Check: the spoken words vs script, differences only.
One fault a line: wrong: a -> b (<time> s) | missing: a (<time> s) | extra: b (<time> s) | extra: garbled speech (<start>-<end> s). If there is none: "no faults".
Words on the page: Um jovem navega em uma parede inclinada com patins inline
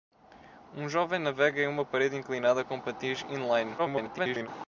extra: garbled speech (3.8-4.5 s)